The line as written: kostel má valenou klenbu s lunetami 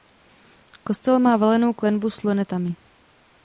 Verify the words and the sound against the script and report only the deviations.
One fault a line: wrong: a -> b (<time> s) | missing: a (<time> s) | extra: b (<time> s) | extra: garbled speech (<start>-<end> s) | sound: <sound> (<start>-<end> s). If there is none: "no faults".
no faults